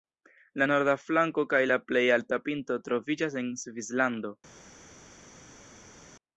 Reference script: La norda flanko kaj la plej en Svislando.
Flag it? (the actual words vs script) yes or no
yes